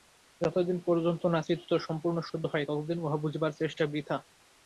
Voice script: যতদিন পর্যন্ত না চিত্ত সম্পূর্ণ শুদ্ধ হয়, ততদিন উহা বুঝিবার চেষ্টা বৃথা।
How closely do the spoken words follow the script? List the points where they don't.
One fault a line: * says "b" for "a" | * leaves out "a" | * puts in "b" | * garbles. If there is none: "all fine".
all fine